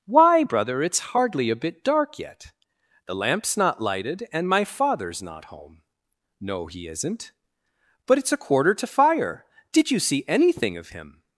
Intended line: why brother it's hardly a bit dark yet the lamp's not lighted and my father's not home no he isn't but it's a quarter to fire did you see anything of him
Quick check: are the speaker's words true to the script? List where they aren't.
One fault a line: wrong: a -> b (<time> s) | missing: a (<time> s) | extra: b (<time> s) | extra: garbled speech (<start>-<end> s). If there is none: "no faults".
no faults